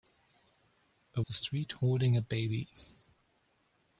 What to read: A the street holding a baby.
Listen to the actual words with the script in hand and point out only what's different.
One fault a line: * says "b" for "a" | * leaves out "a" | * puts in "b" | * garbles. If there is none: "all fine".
all fine